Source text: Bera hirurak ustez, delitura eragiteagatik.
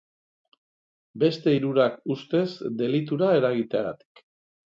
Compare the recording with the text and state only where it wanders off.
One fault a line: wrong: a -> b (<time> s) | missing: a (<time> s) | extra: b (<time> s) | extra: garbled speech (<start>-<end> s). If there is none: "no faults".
wrong: Bera -> Beste (1.2 s)